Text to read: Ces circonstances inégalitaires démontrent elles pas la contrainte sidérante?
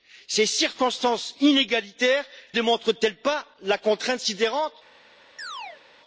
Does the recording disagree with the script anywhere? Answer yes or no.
no